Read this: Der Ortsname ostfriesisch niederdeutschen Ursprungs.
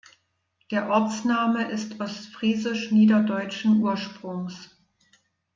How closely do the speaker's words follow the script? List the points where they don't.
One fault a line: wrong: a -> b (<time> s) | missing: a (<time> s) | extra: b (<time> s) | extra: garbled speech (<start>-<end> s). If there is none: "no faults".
extra: ist (1.7 s)